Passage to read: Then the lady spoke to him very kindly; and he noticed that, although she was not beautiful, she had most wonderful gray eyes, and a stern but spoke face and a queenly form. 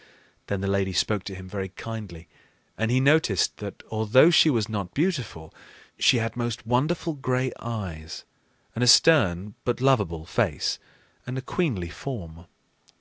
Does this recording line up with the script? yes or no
no